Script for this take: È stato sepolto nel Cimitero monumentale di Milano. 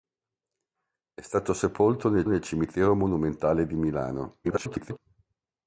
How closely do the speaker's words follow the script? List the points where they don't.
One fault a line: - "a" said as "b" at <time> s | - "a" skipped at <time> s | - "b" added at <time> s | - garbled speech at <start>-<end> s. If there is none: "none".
- "nel" added at 2.3 s
- garbled speech at 4.4-5.0 s